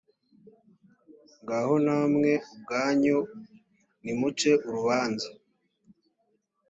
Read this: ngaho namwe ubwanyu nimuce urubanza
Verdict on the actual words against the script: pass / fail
pass